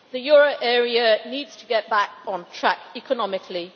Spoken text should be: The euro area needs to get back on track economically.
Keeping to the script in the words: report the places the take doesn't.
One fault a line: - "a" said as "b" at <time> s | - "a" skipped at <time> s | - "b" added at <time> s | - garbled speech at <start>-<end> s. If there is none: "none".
none